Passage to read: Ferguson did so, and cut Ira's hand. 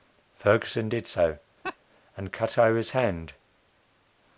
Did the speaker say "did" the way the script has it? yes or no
yes